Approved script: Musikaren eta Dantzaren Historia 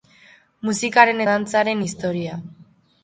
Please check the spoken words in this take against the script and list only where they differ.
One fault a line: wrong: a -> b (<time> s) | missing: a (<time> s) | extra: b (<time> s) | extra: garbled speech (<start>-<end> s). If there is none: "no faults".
missing: eta (1.2 s)